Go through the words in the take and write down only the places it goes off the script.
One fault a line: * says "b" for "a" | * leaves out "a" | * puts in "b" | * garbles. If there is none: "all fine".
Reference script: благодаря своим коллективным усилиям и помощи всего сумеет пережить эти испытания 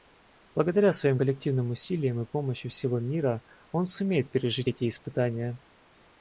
* puts in "мира он"